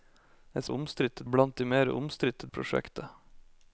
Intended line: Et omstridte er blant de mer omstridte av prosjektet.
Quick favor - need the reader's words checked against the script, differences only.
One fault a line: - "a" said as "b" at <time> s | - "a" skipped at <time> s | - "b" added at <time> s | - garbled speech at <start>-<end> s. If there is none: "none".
none